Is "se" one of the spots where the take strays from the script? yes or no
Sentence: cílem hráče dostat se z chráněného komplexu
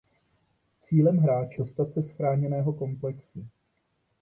no